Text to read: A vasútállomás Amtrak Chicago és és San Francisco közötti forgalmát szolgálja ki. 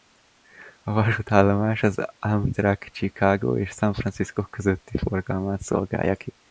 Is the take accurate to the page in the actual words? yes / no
no